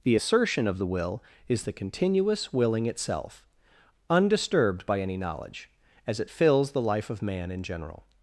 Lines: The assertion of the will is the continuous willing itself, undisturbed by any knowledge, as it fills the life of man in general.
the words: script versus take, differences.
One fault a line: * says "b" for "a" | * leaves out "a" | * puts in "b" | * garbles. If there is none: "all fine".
all fine